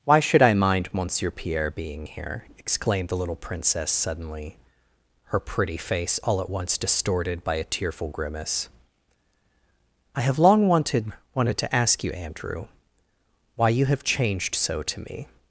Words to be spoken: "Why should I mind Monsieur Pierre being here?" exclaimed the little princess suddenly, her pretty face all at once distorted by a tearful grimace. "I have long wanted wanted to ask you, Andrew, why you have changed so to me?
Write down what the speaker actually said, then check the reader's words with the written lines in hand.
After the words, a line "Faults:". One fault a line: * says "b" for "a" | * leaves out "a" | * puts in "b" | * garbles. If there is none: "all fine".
"Why should I mind Monsieur Pierre being here?" exclaimed the little princess suddenly, her pretty face all at once distorted by a tearful grimace. "I have long wanted wanted to ask you, Andrew, why you have changed so to me?
Faults:
all fine